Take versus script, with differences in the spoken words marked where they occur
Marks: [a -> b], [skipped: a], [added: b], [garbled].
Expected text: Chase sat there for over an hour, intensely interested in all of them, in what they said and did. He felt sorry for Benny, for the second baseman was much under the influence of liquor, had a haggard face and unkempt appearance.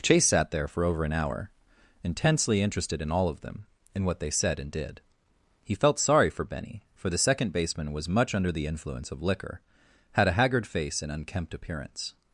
Chase sat there for over an hour, intensely interested in all of them, in what they said and did. He felt sorry for Benny, for the second baseman was much under the influence of liquor, had a haggard face and unkempt appearance.